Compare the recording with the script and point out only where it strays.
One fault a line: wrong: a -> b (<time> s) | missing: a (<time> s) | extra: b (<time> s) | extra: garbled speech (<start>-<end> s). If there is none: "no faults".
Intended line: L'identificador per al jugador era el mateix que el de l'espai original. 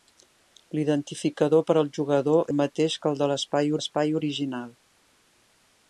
missing: era (2.5 s)
extra: l'espai (3.8 s)